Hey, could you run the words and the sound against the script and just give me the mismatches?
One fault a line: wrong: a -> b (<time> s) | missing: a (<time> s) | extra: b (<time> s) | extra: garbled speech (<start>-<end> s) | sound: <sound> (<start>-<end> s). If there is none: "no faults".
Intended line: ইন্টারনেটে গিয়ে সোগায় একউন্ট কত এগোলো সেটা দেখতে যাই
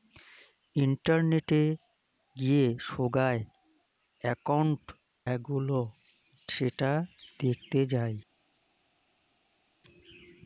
missing: কত (4.8 s)